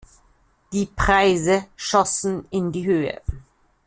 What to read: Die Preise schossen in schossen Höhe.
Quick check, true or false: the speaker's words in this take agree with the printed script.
false